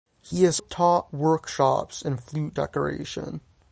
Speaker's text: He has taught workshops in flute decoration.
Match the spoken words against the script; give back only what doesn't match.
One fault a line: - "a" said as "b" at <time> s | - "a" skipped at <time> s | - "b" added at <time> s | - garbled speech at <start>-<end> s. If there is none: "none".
none